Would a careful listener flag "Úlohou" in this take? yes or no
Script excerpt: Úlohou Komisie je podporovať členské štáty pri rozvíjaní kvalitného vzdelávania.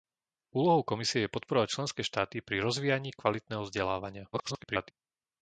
no